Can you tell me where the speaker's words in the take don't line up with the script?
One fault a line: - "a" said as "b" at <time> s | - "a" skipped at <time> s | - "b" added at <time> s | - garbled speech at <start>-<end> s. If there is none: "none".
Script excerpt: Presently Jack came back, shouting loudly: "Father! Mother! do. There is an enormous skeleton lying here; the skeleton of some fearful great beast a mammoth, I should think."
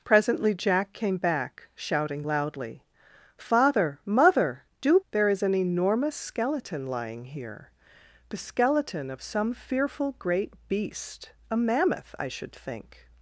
none